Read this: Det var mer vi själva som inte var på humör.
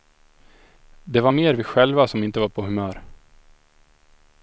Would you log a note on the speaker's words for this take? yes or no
no